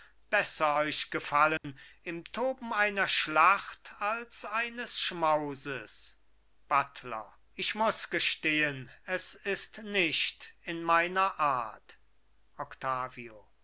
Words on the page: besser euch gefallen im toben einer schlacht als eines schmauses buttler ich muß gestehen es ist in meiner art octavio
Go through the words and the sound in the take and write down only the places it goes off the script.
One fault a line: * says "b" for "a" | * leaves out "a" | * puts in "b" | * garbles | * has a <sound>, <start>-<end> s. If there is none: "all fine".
* has a dropout, 1.6-1.6 s
* puts in "nicht"